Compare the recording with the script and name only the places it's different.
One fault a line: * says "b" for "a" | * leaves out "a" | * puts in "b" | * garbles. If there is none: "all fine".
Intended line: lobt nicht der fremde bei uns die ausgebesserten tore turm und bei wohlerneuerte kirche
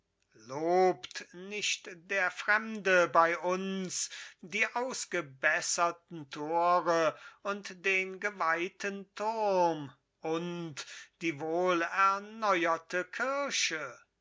* puts in "und den geweihten"
* says "die" for "bei"